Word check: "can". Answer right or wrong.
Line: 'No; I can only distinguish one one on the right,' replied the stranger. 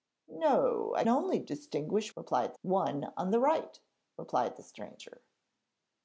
wrong